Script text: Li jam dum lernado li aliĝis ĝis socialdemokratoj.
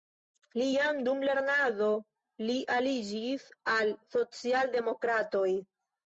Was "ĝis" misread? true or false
true